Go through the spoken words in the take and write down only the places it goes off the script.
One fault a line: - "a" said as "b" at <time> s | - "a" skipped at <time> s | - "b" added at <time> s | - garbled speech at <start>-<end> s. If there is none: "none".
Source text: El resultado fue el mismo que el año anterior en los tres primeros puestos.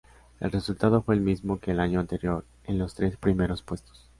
none